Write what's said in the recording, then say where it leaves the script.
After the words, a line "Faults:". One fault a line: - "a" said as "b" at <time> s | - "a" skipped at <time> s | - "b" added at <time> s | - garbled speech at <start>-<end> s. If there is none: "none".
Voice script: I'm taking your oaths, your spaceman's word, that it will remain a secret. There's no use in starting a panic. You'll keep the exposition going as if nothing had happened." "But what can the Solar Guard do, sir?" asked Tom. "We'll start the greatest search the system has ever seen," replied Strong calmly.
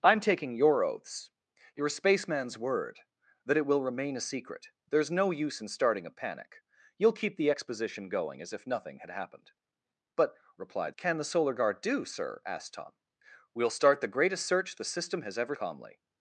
I'm taking your oaths, your spaceman's word, that it will remain a secret. There's no use in starting a panic. You'll keep the exposition going as if nothing had happened." "But replied can the Solar Guard do, sir?" asked Tom. "We'll start the greatest search the system has ever calmly.
Faults:
- "what" said as "replied" at 10.6 s
- "seen replied Strong" skipped at 15.5 s